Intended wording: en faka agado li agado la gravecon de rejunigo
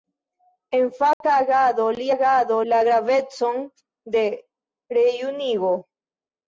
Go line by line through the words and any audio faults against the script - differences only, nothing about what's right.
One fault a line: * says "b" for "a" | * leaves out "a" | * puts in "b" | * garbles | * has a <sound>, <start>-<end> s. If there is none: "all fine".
* has a dropout, 1.1-1.2 s